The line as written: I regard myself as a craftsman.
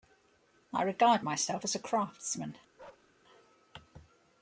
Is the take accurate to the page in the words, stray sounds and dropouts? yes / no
no